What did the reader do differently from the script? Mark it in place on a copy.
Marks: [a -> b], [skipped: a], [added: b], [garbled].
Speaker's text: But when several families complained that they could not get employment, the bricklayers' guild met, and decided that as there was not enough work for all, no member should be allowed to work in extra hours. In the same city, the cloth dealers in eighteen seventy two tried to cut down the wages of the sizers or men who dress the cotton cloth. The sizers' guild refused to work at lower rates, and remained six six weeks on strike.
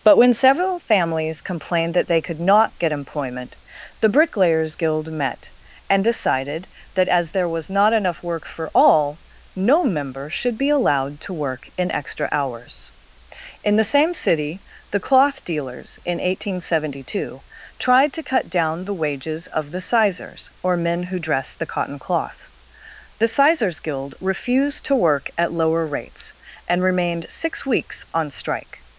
But when several families complained that they could not get employment, the bricklayers' guild met, and decided that as there was not enough work for all, no member should be allowed to work in extra hours. In the same city, the cloth dealers in eighteen seventy two tried to cut down the wages of the sizers or men who dress the cotton cloth. The sizers' guild refused to work at lower rates, and remained six [skipped: six] weeks on strike.